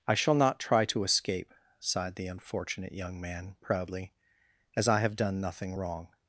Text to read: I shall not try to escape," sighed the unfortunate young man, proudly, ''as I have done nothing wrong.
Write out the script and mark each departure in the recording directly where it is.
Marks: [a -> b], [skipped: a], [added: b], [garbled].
I shall not try to escape," sighed the unfortunate young man, proudly, ''as I have done nothing wrong.